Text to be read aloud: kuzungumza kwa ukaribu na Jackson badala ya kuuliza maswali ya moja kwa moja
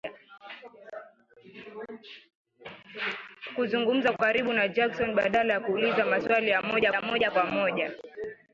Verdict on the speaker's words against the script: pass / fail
fail